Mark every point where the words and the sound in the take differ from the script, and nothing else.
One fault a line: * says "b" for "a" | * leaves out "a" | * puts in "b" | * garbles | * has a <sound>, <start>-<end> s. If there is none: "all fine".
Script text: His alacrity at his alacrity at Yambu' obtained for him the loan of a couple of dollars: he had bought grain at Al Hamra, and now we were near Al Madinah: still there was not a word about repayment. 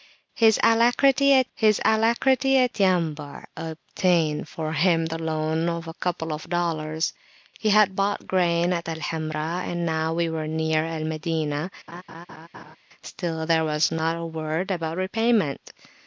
* has a laugh, 11.9-12.8 s